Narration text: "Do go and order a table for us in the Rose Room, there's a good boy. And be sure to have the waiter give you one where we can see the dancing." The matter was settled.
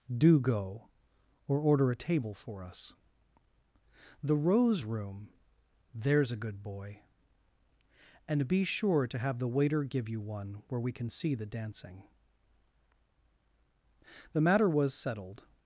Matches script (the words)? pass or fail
fail